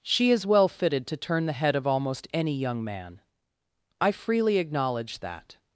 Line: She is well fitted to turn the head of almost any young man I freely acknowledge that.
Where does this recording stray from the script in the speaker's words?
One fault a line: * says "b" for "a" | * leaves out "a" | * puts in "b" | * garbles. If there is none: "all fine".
all fine